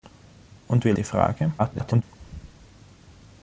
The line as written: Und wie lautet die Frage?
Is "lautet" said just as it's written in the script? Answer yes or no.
no